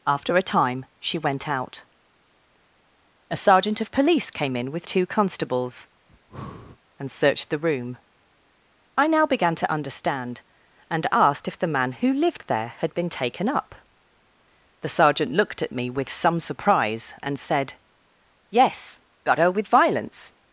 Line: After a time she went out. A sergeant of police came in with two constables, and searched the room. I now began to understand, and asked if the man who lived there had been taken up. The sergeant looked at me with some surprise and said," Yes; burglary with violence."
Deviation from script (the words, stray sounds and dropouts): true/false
true